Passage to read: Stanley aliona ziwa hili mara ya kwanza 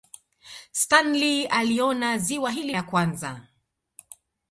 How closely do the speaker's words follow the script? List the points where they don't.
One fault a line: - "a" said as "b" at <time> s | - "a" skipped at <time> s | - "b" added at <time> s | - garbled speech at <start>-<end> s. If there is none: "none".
- "mara" skipped at 2.8 s